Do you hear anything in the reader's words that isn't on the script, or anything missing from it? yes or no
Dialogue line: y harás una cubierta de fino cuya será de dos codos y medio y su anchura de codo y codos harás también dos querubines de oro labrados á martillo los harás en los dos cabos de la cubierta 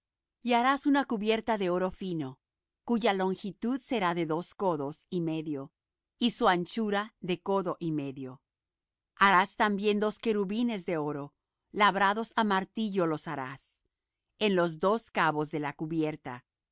yes